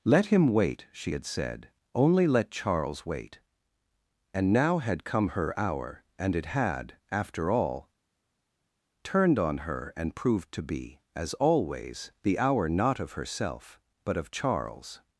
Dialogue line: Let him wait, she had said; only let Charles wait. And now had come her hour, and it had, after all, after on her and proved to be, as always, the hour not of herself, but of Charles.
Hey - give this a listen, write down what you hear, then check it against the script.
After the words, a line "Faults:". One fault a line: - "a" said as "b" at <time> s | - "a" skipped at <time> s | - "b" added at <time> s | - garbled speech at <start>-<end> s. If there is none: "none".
Let him wait, she had said; only let Charles wait. And now had come her hour, and it had, after all, turned on her and proved to be, as always, the hour not of herself, but of Charles.
Faults:
- "after" said as "turned" at 9.0 s